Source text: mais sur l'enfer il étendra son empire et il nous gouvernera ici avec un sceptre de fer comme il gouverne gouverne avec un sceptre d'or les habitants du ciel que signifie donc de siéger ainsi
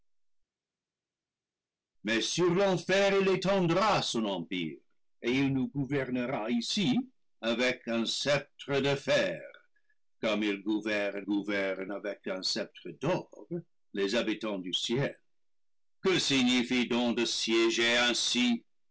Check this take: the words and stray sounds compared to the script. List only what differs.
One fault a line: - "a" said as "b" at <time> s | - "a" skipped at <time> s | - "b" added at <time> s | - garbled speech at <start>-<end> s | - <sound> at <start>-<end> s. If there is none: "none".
none